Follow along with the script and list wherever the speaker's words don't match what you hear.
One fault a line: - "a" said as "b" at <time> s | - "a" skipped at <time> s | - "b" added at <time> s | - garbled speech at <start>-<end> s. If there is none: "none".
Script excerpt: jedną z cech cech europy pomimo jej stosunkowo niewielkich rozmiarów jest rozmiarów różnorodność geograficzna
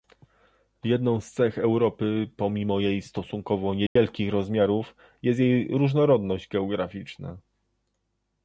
- "cech" skipped at 1.6 s
- "rozmiarów" said as "jej" at 5.4 s